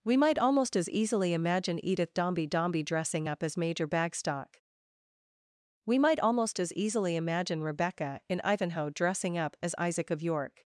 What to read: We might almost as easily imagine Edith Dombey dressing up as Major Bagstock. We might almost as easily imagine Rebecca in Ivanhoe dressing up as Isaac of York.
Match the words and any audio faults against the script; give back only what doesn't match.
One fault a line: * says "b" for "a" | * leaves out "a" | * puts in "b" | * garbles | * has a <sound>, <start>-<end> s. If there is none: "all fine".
* puts in "Dombey"